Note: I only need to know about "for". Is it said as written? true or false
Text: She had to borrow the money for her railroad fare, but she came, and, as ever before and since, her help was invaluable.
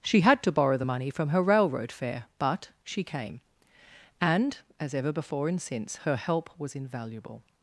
false